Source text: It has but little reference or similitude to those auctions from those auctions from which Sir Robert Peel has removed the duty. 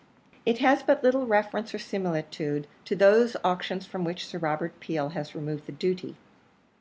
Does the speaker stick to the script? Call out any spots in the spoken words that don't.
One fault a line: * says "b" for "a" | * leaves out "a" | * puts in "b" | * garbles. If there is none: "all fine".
* leaves out "those auctions from"